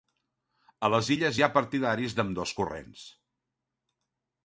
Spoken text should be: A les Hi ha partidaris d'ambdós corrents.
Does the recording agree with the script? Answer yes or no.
no